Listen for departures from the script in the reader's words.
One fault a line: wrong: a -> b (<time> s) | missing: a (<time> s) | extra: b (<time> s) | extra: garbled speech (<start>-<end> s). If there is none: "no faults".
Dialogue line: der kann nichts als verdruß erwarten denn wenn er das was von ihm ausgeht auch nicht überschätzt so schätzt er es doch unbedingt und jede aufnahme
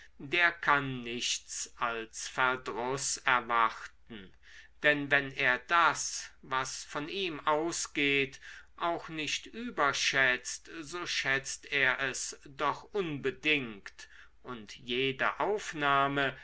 no faults